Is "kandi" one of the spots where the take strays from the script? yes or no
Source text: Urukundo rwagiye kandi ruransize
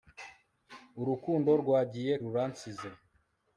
yes